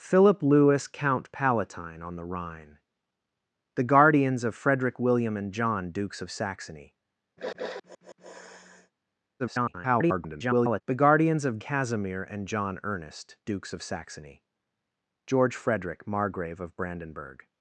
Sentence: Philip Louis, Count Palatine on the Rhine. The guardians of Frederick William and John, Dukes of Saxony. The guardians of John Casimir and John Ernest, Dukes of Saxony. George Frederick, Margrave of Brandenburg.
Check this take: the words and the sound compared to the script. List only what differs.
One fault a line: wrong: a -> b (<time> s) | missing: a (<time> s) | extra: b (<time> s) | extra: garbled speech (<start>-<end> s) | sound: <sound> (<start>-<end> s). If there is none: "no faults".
sound: sniff (7.4-8.9 s)
extra: garbled speech (9.4-10.8 s)
missing: John (11.6 s)